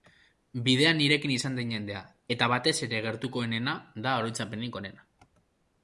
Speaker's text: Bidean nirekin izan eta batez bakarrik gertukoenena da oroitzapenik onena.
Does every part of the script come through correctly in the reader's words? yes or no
no